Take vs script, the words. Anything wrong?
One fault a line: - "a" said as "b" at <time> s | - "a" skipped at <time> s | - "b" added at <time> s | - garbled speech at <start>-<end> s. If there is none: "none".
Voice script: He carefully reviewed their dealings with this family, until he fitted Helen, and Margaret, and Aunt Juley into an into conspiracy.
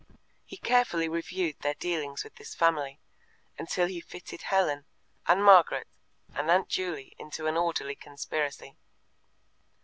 - "into" said as "orderly" at 7.5 s